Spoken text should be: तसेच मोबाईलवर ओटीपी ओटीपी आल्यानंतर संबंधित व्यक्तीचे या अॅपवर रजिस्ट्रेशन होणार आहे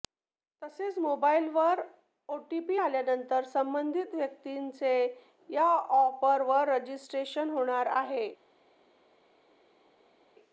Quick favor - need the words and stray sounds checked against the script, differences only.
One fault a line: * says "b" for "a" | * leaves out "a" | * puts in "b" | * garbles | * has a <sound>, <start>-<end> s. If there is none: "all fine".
* leaves out "ओटीपी"